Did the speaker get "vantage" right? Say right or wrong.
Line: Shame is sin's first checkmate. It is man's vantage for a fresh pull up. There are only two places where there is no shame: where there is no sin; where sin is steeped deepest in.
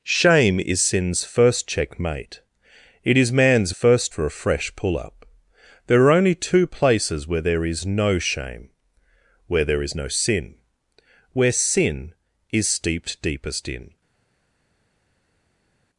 wrong